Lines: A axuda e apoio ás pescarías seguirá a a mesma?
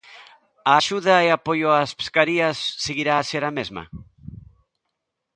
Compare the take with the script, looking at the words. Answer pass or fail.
fail